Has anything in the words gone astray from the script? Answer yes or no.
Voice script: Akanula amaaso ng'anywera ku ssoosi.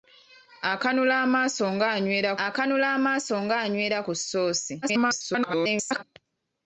yes